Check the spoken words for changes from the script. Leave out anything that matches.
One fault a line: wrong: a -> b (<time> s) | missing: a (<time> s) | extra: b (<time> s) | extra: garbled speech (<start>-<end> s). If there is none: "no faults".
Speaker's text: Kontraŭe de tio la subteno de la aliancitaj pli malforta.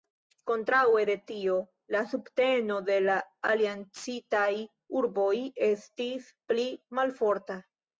extra: urboj estis (5.0 s)